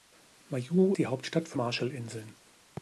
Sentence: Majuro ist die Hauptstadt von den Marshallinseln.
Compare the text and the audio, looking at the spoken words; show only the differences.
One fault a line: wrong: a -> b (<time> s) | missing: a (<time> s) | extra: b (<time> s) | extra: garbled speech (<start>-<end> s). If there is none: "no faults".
missing: ist (0.9 s)
missing: den (1.6 s)